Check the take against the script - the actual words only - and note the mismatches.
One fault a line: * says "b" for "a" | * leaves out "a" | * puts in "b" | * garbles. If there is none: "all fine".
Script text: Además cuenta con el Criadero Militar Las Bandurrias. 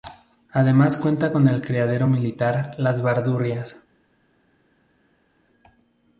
all fine